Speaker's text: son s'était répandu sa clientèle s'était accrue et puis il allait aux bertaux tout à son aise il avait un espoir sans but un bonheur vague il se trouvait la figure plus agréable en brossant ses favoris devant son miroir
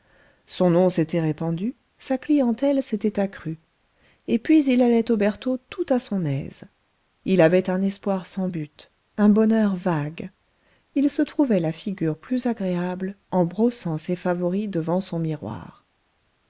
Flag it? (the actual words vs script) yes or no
yes